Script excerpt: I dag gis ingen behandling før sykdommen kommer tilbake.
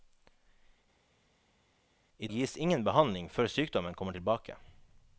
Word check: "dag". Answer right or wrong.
wrong